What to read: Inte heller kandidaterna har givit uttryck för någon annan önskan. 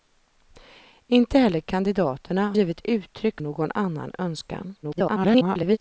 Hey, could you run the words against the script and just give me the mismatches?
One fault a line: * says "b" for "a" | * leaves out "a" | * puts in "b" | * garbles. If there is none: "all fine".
* leaves out "har"
* leaves out "för"
* garbles